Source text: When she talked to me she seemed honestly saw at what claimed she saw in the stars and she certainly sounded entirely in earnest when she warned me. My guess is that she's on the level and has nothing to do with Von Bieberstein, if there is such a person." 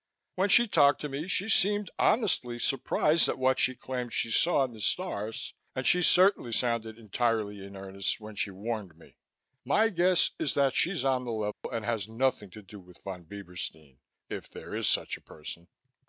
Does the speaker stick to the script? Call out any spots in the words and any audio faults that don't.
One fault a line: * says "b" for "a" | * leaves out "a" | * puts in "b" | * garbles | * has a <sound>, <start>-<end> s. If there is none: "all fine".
* says "surprised" for "saw"
* puts in "she"
* has a dropout, 11.5-11.6 s